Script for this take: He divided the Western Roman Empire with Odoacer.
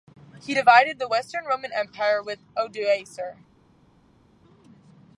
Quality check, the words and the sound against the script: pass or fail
pass